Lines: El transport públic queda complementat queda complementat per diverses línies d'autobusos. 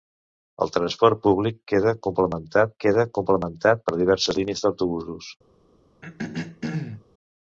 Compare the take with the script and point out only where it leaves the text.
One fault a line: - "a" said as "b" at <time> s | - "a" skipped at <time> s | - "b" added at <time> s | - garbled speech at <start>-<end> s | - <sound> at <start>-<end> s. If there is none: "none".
- throat clearing at 6.0-7.0 s